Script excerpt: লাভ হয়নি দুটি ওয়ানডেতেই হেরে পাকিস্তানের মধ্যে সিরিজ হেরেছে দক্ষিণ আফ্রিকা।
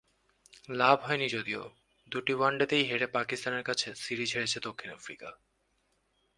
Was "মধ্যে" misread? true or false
true